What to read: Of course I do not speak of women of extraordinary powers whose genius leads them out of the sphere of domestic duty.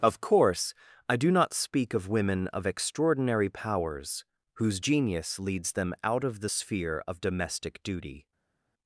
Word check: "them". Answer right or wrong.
right